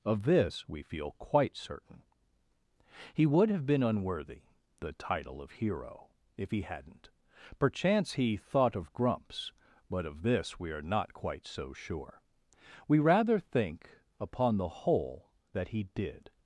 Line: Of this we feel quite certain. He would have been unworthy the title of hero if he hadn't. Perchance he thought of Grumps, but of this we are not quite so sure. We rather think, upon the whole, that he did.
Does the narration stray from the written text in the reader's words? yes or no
no